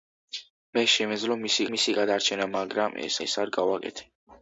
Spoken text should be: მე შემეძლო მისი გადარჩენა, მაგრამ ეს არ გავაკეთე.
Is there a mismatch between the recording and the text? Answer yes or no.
yes